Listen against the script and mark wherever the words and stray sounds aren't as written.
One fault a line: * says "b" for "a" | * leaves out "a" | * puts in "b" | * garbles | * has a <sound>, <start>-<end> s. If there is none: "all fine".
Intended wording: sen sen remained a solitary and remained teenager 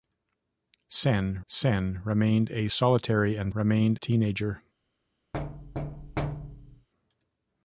* has a thud, 5.3-6.9 s